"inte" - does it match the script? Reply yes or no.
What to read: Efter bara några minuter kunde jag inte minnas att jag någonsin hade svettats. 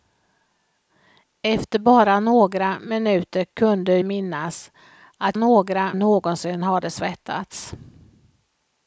no